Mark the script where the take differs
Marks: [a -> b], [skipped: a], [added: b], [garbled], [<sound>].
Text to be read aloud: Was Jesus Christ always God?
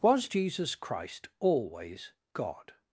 Was Jesus Christ always God?